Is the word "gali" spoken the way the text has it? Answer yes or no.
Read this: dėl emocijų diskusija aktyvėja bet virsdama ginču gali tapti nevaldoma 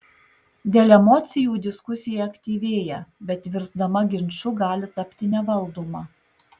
yes